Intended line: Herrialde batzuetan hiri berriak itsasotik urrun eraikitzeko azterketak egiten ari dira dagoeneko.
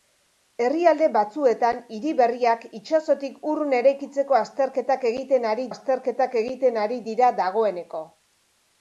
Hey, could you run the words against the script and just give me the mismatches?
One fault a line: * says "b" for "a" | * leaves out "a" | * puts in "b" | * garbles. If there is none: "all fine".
* puts in "azterketak egiten ari"